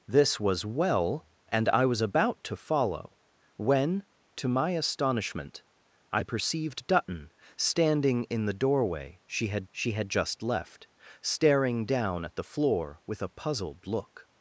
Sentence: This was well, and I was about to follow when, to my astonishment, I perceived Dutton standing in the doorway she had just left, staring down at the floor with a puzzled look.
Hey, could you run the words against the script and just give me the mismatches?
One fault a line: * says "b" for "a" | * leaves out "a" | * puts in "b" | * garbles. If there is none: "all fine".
* puts in "she had"